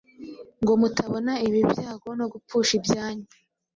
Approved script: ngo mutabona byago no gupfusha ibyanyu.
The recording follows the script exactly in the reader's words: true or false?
false